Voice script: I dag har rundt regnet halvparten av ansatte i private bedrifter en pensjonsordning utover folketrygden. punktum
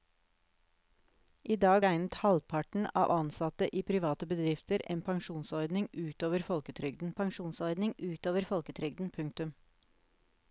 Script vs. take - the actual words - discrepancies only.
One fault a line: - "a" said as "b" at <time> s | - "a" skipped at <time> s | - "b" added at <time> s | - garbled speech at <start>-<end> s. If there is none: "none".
- "har rundt" skipped at 1.8 s
- "pensjonsordning utover folketrygden" added at 7.2 s